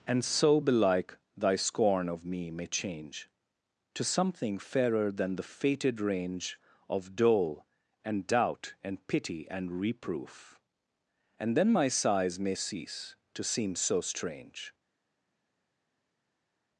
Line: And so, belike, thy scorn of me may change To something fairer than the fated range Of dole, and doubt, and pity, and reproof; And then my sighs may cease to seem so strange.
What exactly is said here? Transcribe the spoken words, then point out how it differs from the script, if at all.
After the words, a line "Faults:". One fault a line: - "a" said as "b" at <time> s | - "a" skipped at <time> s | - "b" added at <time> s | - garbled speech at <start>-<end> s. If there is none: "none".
And so, belike, thy scorn of me may change To something fairer than the fated range Of dole, and doubt, and pity, and reproof; And then my sighs may cease to seem so strange.
Faults:
none